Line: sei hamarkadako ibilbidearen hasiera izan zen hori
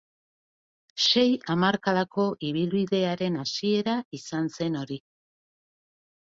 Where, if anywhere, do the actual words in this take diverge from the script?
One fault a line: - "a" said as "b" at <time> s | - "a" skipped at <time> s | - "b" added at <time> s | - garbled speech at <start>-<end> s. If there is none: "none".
none